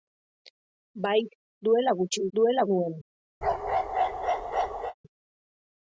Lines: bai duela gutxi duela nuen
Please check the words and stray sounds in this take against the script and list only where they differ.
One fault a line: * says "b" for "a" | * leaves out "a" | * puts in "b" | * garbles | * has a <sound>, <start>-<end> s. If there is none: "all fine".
* has a bark, 3.4-4.9 s